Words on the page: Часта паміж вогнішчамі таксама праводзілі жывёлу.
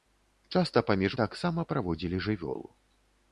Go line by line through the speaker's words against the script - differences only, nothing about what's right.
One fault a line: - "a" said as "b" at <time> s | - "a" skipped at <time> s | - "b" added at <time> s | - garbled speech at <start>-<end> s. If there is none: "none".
- "вогнішчамі" skipped at 1.2 s